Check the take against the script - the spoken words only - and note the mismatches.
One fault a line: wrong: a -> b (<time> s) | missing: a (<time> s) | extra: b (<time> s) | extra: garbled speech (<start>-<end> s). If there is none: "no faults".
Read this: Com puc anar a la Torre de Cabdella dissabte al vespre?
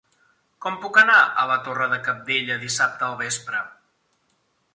no faults